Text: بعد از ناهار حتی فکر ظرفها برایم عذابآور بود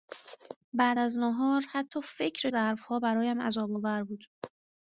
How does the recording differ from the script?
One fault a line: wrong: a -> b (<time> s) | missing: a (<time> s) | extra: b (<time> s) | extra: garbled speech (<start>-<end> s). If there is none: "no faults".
no faults